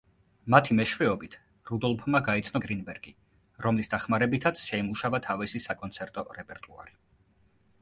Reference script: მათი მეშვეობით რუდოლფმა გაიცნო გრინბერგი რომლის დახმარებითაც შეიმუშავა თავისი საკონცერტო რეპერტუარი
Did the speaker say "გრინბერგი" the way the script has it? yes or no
yes